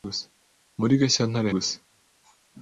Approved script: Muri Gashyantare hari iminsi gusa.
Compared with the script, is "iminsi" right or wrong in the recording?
wrong